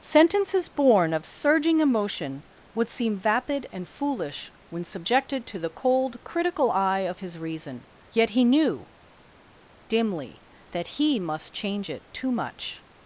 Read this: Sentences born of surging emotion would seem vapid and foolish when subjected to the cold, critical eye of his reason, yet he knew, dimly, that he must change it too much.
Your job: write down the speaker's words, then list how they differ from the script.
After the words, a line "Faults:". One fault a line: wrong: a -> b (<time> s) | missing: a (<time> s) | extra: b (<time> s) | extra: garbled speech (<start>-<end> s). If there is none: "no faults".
Sentences born of surging emotion would seem vapid and foolish when subjected to the cold, critical eye of his reason, yet he knew, dimly, that he must change it too much.
Faults:
no faults